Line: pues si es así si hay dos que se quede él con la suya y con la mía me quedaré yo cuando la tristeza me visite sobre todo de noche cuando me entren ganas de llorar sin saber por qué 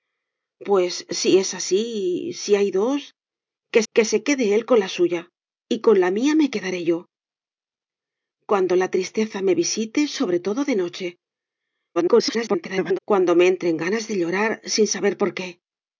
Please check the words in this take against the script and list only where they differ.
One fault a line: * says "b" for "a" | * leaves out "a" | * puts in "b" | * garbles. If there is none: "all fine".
* puts in "que"
* garbles